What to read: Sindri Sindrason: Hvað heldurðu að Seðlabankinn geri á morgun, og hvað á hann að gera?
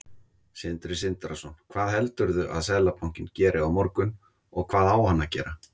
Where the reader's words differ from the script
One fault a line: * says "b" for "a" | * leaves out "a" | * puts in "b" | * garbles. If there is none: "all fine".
all fine